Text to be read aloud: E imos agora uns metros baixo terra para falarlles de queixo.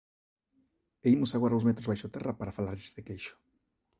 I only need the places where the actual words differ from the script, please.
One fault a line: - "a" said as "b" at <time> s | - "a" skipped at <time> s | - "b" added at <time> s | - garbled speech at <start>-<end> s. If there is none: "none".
none